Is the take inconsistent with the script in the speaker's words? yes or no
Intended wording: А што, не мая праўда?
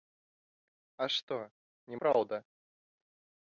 yes